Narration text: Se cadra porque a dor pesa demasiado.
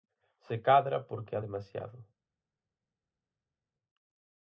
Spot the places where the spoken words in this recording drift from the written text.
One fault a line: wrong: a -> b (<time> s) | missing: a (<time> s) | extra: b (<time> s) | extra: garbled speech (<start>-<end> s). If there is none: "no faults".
missing: dor pesa (1.4 s)